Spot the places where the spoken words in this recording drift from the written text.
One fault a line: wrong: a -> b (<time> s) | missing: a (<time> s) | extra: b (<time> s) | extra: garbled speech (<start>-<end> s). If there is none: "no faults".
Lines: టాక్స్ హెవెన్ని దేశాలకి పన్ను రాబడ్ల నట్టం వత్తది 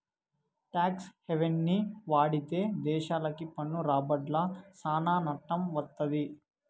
extra: వాడితే (2.1 s)
extra: సానా (4.7 s)